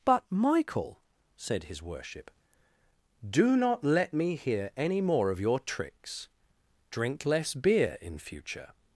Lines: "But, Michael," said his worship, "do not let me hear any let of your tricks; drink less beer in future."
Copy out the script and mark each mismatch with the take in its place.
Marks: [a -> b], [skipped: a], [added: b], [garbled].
"But, Michael," said his worship, "do not let me hear any [let -> more] of your tricks; drink less beer in future."